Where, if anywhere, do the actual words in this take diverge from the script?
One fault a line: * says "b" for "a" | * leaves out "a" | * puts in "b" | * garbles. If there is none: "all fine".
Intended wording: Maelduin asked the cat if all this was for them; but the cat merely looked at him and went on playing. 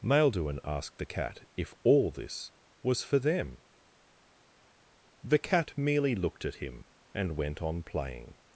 * leaves out "but"